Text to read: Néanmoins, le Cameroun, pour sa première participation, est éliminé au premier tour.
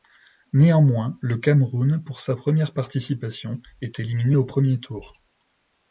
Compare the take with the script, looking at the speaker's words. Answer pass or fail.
pass